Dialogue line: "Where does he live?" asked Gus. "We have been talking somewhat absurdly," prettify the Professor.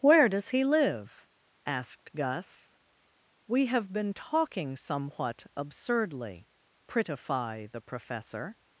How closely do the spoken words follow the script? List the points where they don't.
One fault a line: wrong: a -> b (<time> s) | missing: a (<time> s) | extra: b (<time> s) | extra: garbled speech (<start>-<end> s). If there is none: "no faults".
no faults